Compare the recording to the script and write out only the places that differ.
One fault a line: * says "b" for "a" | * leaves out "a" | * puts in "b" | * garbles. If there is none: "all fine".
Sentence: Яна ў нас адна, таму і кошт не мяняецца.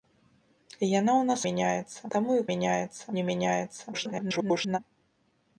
* says "мяняецца" for "адна"
* says "мяняецца" for "кошт"
* garbles